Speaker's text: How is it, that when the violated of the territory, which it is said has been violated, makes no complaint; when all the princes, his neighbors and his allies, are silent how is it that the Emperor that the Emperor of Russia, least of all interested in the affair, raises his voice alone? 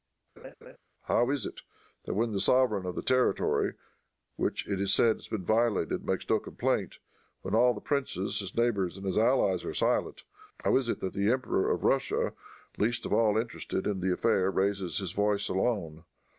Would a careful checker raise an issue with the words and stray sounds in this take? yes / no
yes